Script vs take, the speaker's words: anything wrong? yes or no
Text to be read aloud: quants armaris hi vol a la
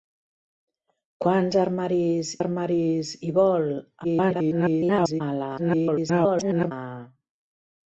yes